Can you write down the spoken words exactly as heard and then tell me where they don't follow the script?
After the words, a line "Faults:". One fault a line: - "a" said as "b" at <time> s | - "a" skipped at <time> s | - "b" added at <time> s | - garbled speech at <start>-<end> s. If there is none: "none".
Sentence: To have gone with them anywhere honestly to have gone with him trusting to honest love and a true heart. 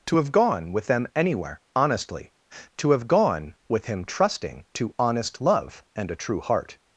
To have gone with them anywhere honestly to have gone with him trusting to honest love and a true heart.
Faults:
none